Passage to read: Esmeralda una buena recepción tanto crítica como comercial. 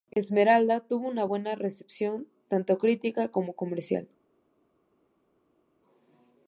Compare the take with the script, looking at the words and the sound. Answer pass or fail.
fail